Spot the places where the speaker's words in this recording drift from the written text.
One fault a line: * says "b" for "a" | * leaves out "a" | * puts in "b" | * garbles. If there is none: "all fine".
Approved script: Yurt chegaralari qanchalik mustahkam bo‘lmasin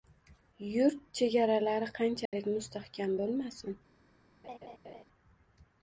all fine